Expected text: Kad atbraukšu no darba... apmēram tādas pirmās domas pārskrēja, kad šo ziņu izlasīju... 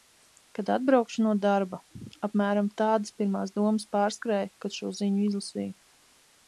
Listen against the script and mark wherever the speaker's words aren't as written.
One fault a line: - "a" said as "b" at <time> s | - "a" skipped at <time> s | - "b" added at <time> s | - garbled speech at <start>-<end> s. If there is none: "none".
none